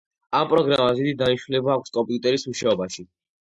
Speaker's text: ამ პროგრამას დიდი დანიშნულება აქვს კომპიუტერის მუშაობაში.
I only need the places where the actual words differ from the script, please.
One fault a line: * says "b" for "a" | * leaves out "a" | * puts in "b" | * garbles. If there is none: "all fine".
all fine